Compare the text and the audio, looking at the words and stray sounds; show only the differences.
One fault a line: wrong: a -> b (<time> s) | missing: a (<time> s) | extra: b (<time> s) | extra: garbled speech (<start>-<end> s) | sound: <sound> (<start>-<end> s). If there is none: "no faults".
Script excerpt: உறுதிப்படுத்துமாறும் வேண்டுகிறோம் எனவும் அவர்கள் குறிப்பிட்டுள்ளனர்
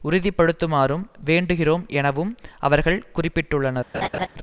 sound: laugh (3.9-4.3 s)